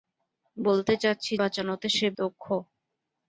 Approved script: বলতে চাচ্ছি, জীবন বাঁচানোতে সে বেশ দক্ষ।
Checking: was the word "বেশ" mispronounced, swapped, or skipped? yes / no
yes